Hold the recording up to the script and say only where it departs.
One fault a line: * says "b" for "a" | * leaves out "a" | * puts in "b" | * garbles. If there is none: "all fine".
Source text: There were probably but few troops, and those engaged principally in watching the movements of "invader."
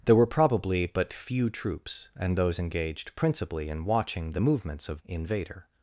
all fine